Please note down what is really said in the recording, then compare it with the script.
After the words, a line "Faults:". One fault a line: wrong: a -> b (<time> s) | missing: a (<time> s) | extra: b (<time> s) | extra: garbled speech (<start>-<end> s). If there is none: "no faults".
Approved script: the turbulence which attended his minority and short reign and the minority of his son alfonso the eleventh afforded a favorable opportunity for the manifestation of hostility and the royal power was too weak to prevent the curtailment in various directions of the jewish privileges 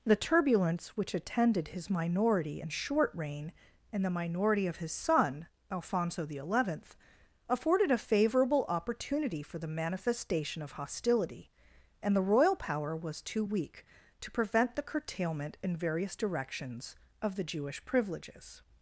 the turbulence which attended his minority and short reign and the minority of his son alfonso the eleventh afforded a favorable opportunity for the manifestation of hostility and the royal power was too weak to prevent the curtailment in various directions of the jewish privileges
Faults:
no faults